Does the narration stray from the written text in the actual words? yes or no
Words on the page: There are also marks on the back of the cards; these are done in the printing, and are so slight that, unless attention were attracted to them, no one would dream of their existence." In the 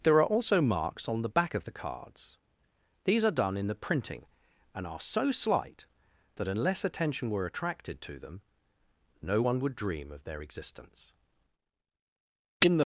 no